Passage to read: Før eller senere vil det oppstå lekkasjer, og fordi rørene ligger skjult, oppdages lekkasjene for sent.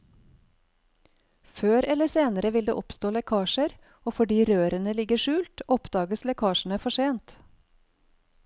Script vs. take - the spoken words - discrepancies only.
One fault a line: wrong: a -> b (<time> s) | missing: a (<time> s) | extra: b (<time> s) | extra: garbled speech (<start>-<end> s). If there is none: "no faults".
no faults